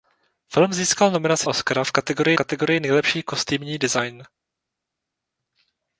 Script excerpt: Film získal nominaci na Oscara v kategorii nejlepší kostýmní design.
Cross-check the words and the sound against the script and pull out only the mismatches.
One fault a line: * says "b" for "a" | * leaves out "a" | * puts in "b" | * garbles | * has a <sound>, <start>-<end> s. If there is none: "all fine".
* leaves out "na"
* puts in "kategorii"